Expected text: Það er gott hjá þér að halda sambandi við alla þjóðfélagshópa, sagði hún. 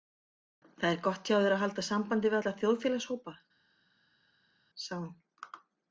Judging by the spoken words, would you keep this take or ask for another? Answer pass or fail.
pass